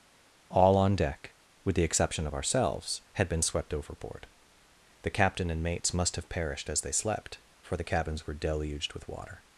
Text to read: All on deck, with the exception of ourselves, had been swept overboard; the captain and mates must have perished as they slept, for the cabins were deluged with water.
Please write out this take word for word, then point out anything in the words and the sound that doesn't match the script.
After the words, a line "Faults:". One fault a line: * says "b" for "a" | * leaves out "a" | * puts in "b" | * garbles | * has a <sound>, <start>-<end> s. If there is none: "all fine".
All on deck, with the exception of ourselves, had been swept overboard; the captain and mates must have perished as they slept, for the cabins were deluged with water.
Faults:
all fine